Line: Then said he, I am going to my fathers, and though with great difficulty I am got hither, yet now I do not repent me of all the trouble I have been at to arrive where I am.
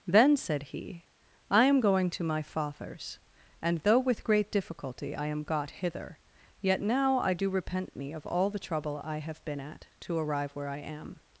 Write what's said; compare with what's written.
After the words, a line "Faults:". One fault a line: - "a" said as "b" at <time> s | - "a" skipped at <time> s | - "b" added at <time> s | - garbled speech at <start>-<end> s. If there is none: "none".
Then said he, I am going to my fathers, and though with great difficulty I am got hither, yet now I do repent me of all the trouble I have been at to arrive where I am.
Faults:
- "not" skipped at 7.5 s